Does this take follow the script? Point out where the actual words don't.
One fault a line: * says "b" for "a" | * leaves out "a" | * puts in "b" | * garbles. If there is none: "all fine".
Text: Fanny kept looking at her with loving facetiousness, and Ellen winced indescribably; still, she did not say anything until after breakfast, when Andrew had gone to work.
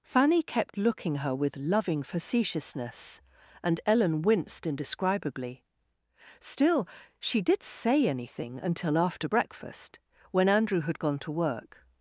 * leaves out "at"
* leaves out "not"